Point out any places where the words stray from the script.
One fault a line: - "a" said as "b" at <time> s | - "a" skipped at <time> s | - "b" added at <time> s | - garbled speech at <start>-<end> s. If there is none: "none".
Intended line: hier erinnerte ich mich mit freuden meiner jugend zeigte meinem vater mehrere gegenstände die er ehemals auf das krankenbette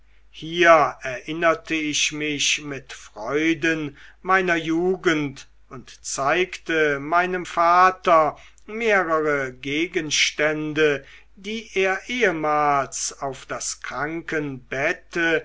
- "und" added at 5.7 s